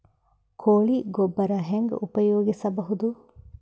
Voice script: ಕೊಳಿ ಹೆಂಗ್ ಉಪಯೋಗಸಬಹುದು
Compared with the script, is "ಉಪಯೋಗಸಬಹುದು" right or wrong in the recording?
right